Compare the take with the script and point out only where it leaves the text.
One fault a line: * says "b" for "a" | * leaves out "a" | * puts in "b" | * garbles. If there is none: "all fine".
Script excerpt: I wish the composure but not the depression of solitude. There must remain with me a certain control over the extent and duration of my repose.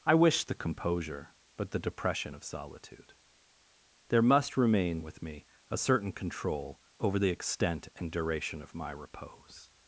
* leaves out "not"